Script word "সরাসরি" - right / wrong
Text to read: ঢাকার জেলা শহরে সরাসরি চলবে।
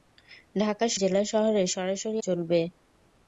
right